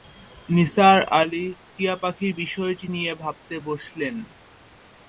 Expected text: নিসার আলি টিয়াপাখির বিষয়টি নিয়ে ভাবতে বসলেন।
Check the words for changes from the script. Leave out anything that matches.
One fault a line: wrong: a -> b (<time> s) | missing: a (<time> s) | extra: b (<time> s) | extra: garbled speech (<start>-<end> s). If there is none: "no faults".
no faults